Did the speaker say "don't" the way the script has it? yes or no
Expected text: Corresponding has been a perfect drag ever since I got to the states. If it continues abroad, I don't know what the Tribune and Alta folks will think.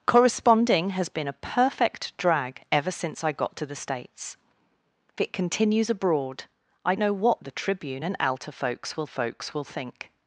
no